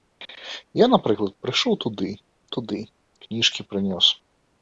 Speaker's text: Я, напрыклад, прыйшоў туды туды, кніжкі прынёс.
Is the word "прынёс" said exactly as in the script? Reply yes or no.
yes